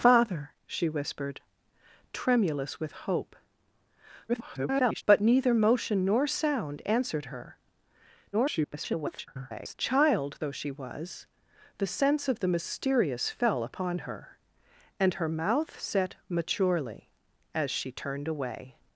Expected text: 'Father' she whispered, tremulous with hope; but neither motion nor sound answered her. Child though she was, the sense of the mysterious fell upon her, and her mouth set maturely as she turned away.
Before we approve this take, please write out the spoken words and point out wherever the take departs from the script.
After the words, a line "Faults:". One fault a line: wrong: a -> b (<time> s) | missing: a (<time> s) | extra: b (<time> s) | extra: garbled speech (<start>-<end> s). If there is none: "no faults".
'Father' she whispered, tremulous with hope; [garbled] but neither motion nor sound answered her. [garbled] Child though she was, the sense of the mysterious fell upon her, and her mouth set maturely as she turned away.
Faults:
extra: garbled speech (4.3-5.0 s)
extra: garbled speech (8.3-9.7 s)